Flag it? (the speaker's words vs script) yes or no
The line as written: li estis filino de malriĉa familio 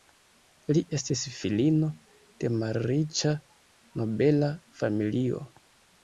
yes